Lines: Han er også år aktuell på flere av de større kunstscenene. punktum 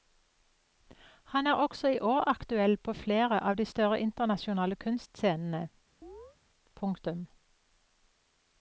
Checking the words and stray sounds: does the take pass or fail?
fail